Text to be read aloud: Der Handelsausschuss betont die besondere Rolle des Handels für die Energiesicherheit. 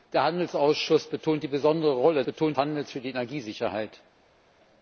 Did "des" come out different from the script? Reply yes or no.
yes